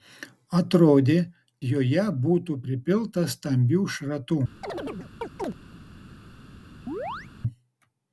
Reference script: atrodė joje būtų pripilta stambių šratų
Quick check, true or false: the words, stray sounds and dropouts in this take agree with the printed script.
false